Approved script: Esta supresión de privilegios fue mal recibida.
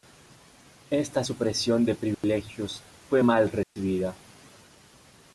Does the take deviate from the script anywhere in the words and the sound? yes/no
yes